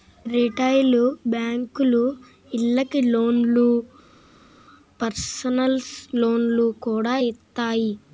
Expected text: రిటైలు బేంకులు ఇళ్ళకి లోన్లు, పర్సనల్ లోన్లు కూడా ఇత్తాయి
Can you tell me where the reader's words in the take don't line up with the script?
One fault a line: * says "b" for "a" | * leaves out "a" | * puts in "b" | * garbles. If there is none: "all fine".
all fine